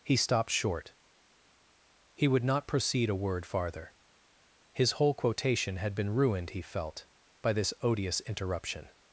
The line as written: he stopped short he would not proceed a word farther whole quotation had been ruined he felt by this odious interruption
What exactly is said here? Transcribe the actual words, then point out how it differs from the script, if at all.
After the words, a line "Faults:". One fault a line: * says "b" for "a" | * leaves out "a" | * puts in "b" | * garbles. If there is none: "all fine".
he stopped short he would not proceed a word farther his whole quotation had been ruined he felt by this odious interruption
Faults:
* puts in "his"